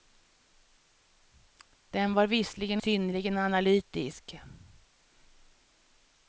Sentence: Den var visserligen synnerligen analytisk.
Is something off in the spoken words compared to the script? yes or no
no